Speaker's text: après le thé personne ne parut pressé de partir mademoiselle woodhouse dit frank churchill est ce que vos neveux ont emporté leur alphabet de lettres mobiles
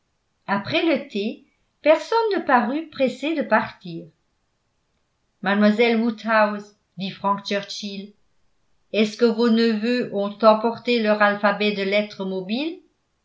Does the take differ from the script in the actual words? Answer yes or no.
no